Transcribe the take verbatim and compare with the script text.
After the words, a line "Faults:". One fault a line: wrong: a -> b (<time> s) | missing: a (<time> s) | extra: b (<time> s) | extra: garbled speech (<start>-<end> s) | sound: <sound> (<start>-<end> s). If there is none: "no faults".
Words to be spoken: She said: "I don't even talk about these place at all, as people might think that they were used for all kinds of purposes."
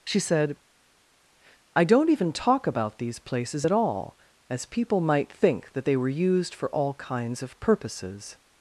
She said: "I don't even talk about these places at all, as people might think that they were used for all kinds of purposes."
Faults:
wrong: place -> places (3.2 s)